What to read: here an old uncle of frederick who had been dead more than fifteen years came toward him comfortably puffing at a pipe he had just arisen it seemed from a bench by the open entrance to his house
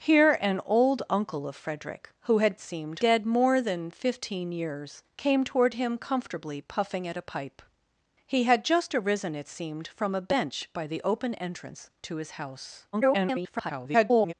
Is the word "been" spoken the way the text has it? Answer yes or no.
no